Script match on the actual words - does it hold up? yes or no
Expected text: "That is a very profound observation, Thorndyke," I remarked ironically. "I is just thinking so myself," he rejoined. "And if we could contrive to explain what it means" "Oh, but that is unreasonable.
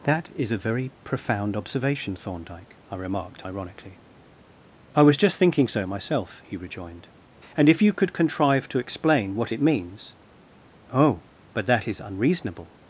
no